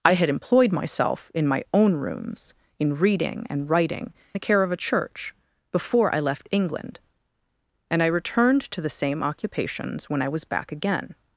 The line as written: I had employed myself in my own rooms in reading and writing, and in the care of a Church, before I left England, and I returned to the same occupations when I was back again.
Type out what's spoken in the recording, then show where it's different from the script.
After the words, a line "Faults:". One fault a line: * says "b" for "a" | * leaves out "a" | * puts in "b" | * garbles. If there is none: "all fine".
I had employed myself in my own rooms in reading and writing, the care of a Church, before I left England, and I returned to the same occupations when I was back again.
Faults:
* leaves out "and in"